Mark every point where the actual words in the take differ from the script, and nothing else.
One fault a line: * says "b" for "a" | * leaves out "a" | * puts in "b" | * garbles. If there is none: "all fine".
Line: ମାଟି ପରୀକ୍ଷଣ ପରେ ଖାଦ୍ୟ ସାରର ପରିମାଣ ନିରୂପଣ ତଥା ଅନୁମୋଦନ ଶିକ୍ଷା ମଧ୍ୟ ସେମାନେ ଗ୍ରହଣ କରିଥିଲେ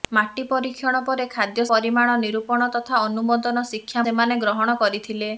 * leaves out "ସାରର"
* leaves out "ମଧ୍ୟ"